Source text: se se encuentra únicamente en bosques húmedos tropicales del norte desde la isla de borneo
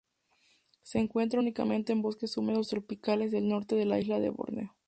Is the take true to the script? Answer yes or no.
no